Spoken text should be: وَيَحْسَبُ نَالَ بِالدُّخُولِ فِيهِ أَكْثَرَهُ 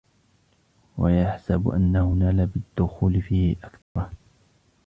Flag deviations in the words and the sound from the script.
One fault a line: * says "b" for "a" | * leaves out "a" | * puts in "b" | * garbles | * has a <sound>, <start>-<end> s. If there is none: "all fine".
* puts in "أَنَّهُ"
* has a dropout, 3.8-4.0 s